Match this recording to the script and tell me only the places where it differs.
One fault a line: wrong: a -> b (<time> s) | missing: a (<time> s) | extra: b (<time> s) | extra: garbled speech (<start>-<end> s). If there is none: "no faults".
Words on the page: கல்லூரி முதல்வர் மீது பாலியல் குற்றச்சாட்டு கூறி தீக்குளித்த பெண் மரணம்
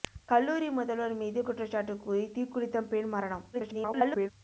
missing: பாலியல் (1.4 s)
extra: garbled speech (3.5-4.3 s)